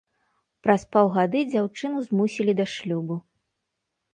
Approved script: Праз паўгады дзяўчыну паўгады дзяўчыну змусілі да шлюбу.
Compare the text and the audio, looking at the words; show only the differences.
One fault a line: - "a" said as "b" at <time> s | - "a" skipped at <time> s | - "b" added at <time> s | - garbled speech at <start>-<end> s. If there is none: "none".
- "паўгады дзяўчыну" skipped at 2.0 s